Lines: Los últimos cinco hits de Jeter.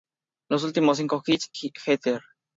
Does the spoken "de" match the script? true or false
false